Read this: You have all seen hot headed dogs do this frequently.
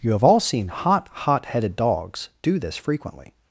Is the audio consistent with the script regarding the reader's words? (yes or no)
no